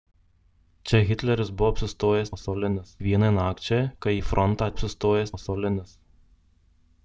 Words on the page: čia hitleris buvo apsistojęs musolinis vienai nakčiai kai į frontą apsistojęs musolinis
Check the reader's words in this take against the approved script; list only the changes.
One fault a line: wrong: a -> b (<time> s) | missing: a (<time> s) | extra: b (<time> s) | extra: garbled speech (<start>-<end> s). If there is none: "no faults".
no faults